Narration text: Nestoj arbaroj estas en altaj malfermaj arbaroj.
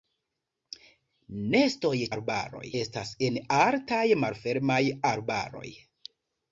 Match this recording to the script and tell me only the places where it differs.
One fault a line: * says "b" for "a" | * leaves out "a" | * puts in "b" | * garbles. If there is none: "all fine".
all fine